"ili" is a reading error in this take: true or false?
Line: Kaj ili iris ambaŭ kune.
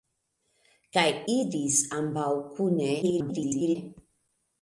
true